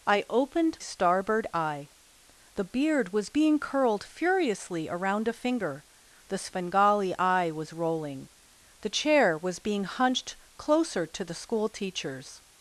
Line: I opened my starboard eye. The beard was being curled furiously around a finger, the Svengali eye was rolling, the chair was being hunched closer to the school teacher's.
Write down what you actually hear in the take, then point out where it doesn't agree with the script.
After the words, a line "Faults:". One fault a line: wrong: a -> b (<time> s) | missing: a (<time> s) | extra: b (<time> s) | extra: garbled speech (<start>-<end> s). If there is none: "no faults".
I opened starboard eye. The beard was being curled furiously around a finger, the Svengali eye was rolling, the chair was being hunched closer to the school teacher's.
Faults:
missing: my (0.8 s)